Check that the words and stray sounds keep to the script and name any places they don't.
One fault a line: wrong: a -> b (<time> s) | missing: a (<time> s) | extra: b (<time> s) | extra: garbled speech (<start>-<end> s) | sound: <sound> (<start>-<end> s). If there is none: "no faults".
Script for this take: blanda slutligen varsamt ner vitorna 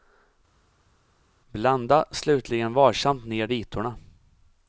no faults